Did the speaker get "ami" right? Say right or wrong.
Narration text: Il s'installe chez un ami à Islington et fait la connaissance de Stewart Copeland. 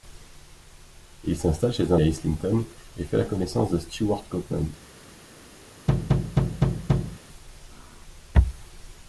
wrong